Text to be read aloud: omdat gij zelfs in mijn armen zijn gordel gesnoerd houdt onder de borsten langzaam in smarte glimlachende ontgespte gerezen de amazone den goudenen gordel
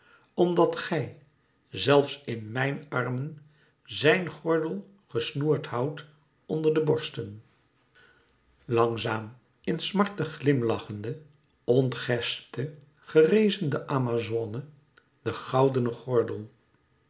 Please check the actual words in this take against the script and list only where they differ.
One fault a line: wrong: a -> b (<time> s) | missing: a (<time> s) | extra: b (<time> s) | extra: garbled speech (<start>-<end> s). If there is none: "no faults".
no faults